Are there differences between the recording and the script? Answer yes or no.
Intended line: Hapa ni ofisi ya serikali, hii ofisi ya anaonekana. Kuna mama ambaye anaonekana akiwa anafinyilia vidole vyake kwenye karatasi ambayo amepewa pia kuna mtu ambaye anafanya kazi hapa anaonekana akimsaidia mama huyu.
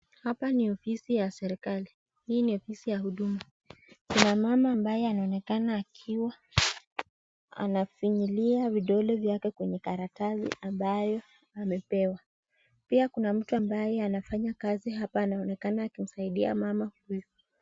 yes